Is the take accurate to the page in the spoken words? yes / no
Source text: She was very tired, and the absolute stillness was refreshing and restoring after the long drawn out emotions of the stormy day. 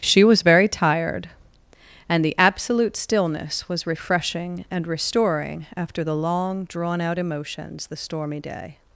no